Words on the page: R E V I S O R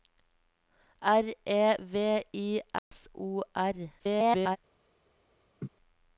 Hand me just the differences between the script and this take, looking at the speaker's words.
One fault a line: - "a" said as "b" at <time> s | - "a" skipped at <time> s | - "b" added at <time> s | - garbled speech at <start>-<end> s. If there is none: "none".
- garbled speech at 4.0-4.6 s